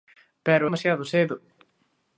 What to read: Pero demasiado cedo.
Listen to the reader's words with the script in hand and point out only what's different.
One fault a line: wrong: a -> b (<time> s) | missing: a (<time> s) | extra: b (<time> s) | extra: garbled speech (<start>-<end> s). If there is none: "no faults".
no faults